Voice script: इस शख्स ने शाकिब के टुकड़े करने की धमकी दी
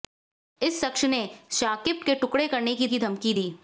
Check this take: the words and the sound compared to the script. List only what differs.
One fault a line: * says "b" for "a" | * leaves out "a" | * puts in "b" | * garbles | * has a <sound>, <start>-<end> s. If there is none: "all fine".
* puts in "की"